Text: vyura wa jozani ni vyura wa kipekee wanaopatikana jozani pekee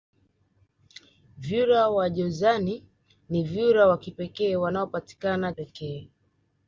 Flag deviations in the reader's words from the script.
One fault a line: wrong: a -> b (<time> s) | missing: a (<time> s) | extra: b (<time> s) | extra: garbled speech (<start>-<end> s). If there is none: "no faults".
missing: jozani (5.5 s)